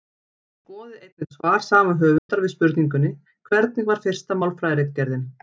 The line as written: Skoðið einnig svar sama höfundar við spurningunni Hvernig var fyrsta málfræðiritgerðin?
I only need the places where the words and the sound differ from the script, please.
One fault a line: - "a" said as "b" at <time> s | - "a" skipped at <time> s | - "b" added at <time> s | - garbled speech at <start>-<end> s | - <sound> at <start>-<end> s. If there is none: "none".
- dropout at 2.2-2.3 s